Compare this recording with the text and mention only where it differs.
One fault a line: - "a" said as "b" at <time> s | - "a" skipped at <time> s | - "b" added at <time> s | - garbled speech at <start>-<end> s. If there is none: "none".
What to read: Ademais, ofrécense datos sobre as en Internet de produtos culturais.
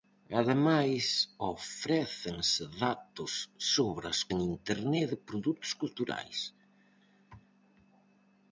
none